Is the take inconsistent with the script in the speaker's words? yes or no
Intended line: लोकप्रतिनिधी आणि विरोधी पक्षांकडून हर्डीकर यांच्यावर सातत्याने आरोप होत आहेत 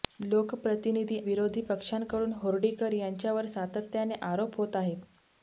yes